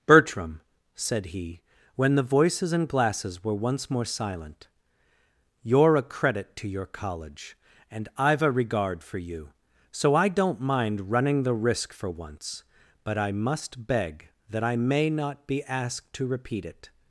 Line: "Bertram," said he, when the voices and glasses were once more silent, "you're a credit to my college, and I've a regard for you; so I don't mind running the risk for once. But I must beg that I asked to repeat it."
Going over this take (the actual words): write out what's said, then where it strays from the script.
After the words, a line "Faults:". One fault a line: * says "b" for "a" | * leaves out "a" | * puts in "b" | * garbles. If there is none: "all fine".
"Bertram," said he, when the voices and glasses were once more silent, "you're a credit to your college, and I've a regard for you; so I don't mind running the risk for once. But I must beg that I may not be asked to repeat it."
Faults:
* says "your" for "my"
* puts in "may not be"